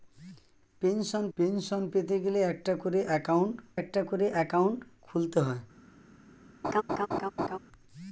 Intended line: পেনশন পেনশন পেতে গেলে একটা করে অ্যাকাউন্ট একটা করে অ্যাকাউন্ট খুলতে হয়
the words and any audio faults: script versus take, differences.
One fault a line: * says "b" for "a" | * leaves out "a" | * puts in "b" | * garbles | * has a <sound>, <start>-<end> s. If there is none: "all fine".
* has a laugh, 6.6-7.6 s